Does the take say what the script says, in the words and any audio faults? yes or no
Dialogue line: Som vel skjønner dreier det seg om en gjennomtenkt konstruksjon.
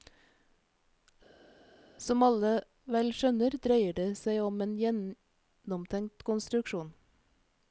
no